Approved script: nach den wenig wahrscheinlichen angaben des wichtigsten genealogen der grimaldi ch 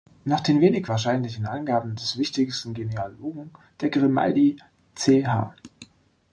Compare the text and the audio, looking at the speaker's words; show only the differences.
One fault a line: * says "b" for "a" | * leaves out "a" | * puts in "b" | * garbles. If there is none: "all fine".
all fine